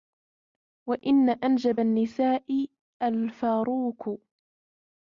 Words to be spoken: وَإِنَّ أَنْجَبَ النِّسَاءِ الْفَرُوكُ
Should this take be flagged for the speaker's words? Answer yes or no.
no